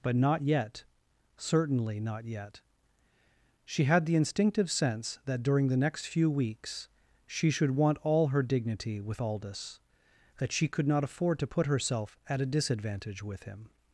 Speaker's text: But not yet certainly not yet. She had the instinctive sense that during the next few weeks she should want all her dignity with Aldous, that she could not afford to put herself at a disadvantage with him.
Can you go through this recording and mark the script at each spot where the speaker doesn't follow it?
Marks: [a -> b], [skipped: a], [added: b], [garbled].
But not yet certainly not yet. She had the instinctive sense that during the next few weeks she should want all her dignity with Aldous, that she could not afford to put herself at a disadvantage with him.